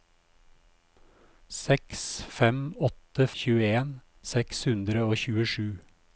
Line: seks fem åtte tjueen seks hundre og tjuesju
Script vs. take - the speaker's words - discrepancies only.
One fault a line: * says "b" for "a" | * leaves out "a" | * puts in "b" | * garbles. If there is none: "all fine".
all fine